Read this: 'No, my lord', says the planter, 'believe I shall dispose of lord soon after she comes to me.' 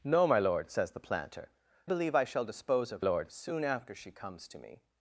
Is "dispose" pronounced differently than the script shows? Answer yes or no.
no